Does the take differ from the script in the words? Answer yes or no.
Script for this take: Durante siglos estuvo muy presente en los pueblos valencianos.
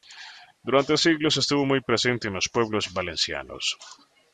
no